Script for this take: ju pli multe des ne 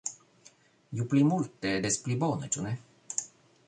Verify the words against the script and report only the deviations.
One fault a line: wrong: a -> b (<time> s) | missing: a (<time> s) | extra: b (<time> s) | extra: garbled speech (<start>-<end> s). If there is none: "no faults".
extra: pli bone ĉu (2.1 s)